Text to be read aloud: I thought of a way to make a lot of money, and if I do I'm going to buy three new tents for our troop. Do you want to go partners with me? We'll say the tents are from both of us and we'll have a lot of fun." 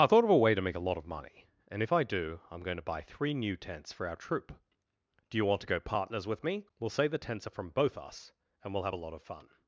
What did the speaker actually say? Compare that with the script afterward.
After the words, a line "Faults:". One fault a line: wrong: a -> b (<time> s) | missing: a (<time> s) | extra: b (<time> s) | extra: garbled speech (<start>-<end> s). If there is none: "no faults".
I thought of a way to make a lot of money, and if I do I'm going to buy three new tents for our troop. Do you want to go partners with me? We'll say the tents are from both us and we'll have a lot of fun."
Faults:
missing: of (8.0 s)